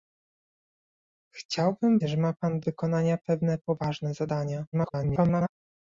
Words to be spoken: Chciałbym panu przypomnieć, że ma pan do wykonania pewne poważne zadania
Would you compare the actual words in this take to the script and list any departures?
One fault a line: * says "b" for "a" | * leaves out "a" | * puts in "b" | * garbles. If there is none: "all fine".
* leaves out "panu przypomnieć"
* leaves out "do"
* garbles